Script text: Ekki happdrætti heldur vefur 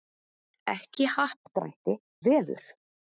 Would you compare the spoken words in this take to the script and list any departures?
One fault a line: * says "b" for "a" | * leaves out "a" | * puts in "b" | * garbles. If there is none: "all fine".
* leaves out "heldur"